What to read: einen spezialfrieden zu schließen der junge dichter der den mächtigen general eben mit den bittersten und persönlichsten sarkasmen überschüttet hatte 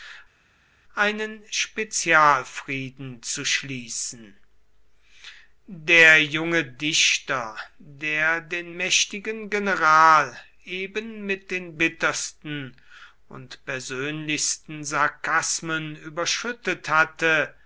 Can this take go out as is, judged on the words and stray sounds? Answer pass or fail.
pass